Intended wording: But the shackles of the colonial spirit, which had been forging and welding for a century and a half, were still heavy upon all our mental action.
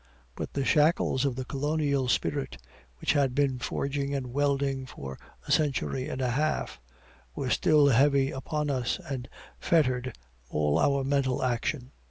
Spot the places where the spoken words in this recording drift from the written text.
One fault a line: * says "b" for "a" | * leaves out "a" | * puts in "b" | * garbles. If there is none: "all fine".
* puts in "us and fettered"